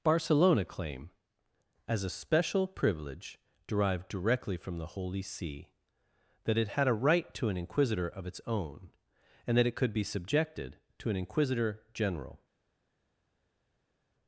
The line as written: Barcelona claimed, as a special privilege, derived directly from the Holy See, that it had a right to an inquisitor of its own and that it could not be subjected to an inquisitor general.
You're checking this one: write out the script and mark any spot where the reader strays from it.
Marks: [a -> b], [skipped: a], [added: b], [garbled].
Barcelona [claimed, -> claim] as a special privilege, derived directly from the Holy See, that it had a right to an inquisitor of its own and that it could [skipped: not] be subjected to an inquisitor general.